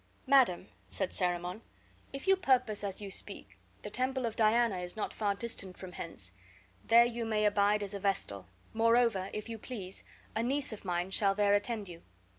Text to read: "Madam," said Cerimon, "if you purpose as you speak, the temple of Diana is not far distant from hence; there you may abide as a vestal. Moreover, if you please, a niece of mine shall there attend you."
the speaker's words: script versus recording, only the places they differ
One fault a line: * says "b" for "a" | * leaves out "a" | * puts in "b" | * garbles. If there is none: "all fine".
all fine